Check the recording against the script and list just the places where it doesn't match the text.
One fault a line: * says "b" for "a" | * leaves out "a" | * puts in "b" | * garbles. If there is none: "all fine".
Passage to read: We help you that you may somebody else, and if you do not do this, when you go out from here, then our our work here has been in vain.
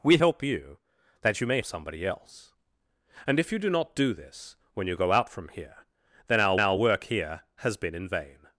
all fine